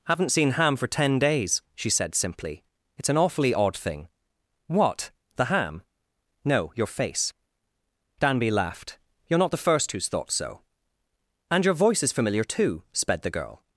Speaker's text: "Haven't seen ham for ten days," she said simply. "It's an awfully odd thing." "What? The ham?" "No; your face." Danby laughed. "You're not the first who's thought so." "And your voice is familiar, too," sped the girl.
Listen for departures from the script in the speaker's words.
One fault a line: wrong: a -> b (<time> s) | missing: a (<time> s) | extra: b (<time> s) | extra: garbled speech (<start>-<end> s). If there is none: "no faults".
no faults